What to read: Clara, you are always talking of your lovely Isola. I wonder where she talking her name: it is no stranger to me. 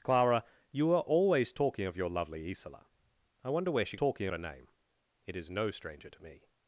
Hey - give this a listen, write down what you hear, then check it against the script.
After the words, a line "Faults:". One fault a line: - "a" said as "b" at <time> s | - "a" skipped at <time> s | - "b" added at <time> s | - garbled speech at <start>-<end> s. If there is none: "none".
Clara, you are always talking of your lovely Isola. I wonder where she talking her name: it is no stranger to me.
Faults:
none